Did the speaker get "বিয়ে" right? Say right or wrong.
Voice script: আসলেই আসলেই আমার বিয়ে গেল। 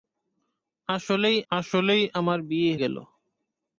right